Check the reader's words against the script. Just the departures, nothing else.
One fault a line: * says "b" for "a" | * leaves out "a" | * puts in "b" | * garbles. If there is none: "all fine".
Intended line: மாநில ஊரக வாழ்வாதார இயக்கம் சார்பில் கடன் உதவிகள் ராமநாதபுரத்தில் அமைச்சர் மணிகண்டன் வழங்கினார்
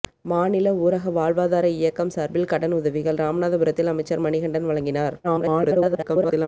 * garbles